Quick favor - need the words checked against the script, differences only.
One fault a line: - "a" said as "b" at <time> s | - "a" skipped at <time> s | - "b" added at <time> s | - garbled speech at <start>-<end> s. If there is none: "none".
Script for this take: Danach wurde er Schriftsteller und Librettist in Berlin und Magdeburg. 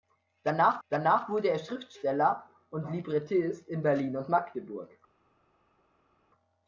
- "danach" added at 0.9 s